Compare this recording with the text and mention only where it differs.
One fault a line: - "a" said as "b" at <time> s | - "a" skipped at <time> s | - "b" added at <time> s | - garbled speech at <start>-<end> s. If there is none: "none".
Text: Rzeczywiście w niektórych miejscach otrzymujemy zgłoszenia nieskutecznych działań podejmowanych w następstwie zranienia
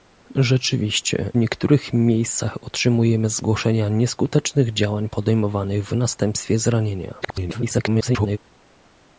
- "w" skipped at 1.3 s
- garbled speech at 7.2-8.4 s